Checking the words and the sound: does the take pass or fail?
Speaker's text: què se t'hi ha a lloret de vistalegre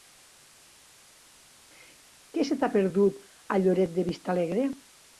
fail